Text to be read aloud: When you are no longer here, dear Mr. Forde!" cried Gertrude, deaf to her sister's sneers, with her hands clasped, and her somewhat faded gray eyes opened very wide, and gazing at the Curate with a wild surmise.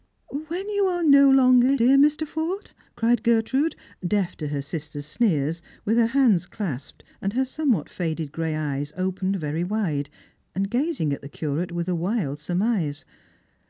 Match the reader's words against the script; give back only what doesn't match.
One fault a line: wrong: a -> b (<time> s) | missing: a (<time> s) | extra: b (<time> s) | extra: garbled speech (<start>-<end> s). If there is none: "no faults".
missing: here (1.8 s)